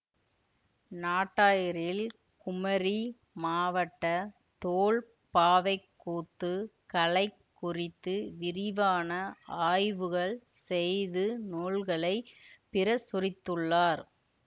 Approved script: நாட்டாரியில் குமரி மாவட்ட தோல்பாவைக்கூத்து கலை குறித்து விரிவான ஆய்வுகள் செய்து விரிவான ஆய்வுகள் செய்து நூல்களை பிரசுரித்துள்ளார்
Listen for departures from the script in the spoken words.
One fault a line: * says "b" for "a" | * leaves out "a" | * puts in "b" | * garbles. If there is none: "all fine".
* leaves out "விரிவான ஆய்வுகள் செய்து"